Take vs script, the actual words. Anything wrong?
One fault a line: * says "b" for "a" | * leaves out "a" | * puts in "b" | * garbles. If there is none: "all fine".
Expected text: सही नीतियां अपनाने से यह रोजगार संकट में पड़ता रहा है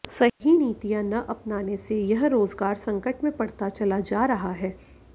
* puts in "न"
* puts in "चला जा"